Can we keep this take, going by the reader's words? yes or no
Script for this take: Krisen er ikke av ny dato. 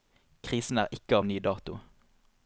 yes